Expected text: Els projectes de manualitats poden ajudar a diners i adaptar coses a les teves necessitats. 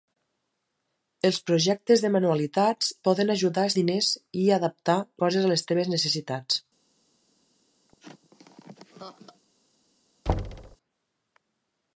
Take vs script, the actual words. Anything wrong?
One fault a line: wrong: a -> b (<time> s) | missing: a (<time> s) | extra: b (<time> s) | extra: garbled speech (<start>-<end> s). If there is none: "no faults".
no faults